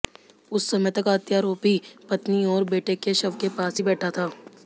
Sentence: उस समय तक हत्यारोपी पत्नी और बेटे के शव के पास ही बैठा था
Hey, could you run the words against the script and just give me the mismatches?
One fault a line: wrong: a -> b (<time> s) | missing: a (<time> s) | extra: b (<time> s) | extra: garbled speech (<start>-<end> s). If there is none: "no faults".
no faults